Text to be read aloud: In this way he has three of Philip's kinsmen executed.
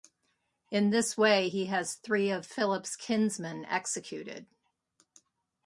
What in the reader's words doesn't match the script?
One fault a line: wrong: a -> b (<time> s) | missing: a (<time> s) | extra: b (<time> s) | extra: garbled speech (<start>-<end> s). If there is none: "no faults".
no faults